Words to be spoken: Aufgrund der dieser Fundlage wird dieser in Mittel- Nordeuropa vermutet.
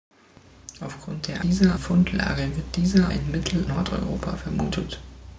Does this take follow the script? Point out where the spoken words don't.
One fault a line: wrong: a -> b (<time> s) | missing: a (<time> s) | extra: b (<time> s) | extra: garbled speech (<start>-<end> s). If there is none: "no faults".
no faults